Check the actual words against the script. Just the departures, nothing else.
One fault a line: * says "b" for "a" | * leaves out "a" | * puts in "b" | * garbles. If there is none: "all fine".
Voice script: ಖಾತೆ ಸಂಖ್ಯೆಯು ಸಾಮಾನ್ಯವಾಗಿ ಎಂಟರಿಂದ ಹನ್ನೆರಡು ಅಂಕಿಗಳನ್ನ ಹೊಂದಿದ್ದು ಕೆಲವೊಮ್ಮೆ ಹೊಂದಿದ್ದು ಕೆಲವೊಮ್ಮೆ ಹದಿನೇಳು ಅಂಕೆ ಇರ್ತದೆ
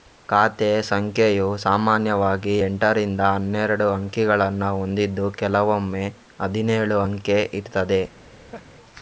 * leaves out "ಹೊಂದಿದ್ದು ಕೆಲವೊಮ್ಮೆ"